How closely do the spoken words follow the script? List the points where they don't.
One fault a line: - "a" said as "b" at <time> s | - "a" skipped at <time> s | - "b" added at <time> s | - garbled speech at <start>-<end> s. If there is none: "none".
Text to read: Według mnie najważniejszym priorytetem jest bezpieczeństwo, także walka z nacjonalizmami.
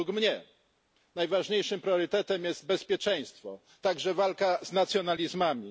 none